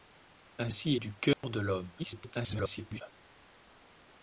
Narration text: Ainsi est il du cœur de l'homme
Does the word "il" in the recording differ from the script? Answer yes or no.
yes